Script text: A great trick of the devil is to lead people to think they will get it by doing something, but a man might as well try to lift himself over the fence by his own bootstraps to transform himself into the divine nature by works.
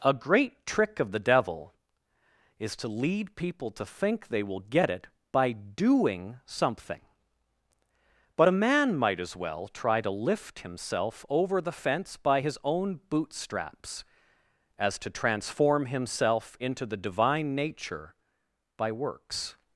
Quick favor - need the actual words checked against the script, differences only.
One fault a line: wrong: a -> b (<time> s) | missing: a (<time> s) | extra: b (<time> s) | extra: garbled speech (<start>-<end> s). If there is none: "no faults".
extra: as (14.8 s)